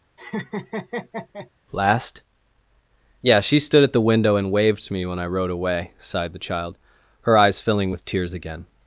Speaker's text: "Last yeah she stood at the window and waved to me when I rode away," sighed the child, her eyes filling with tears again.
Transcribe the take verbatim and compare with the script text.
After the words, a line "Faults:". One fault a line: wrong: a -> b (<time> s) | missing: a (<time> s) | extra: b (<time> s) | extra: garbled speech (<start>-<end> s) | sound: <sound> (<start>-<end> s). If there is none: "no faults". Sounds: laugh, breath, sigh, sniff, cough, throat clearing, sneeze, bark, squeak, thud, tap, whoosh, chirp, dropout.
"Last yeah she stood at the window and waved to me when I rode away," sighed the child, her eyes filling with tears again.
Faults:
sound: laugh (0.2-1.5 s)